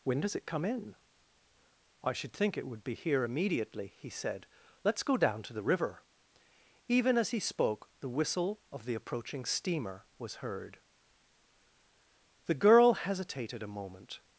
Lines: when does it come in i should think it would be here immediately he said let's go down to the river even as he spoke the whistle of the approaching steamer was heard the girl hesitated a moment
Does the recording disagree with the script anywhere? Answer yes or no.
no